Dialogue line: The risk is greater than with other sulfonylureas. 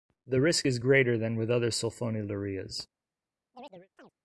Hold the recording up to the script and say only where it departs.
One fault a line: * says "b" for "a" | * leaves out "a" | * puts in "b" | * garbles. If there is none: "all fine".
all fine